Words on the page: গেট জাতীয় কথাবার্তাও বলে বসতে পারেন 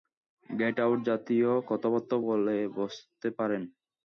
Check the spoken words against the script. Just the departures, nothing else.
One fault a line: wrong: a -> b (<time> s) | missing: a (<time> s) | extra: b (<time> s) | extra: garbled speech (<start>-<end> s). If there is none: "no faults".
extra: আউট (0.8 s)